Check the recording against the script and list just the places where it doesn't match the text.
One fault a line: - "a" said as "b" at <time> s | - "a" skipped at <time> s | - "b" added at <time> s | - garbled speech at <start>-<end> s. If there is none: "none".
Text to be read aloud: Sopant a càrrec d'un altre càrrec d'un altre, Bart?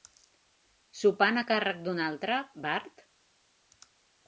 - "càrrec d'un altre" skipped at 2.4 s